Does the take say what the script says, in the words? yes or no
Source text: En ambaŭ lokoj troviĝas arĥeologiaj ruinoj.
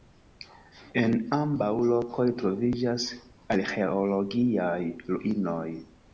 yes